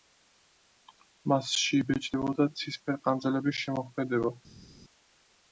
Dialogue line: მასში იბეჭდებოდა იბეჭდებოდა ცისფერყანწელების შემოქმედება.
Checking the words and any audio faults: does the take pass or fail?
fail